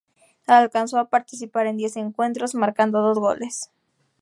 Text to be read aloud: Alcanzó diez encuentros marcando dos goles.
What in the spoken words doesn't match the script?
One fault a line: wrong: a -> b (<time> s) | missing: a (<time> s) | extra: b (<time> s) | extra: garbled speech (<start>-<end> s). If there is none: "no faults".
extra: a participar en (1.0 s)